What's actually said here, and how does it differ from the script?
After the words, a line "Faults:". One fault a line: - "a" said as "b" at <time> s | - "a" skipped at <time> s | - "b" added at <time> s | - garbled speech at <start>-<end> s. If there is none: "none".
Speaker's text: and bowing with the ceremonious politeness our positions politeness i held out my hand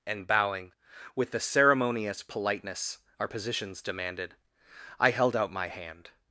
and bowing with the ceremonious politeness our positions demanded i held out my hand
Faults:
- "politeness" said as "demanded" at 3.8 s